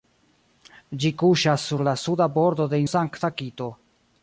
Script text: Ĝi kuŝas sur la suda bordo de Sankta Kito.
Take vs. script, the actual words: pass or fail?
pass